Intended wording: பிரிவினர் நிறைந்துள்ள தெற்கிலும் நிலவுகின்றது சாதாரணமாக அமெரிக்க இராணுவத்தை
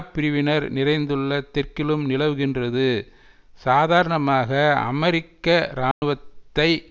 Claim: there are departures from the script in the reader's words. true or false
false